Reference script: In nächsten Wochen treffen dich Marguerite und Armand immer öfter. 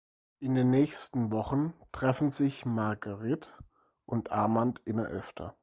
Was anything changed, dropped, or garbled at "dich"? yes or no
yes